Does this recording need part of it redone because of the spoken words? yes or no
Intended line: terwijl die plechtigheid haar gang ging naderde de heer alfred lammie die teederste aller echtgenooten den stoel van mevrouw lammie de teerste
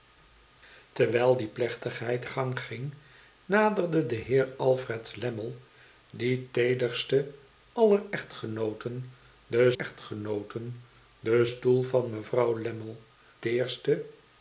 yes